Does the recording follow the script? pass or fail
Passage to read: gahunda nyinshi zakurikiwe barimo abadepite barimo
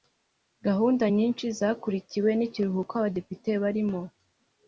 fail